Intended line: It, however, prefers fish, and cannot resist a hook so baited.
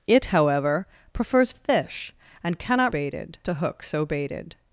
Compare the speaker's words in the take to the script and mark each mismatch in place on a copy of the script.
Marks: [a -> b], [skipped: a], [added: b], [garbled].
It, however, prefers fish, and cannot [resist -> baited] a hook so baited.